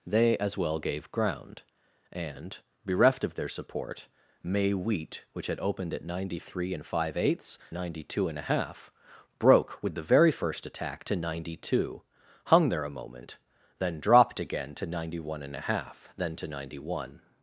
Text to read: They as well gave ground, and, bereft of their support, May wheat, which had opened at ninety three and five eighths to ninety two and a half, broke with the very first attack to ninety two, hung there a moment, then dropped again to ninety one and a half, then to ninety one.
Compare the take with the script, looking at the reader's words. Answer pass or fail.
fail